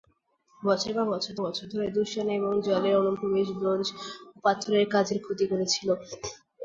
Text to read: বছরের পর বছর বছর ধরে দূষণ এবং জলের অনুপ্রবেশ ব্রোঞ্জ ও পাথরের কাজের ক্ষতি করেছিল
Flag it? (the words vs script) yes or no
no